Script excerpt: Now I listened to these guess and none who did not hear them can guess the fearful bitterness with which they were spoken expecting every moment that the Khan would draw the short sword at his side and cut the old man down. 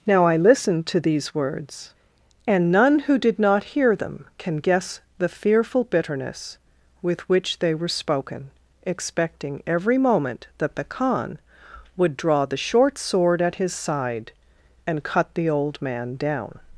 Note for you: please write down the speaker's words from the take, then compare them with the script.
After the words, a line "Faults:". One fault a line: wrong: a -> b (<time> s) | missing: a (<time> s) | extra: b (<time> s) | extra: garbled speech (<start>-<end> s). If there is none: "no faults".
Now I listened to these words and none who did not hear them can guess the fearful bitterness with which they were spoken expecting every moment that the Khan would draw the short sword at his side and cut the old man down.
Faults:
wrong: guess -> words (1.4 s)